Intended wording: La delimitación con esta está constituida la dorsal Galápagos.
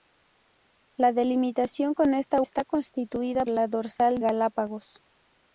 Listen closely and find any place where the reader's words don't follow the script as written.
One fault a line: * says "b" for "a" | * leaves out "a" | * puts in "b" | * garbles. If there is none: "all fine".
all fine